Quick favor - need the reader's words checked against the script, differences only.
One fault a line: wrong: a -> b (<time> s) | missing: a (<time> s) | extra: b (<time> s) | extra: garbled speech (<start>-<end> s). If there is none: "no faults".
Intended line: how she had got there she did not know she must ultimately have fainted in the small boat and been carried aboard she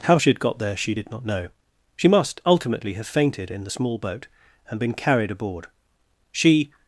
no faults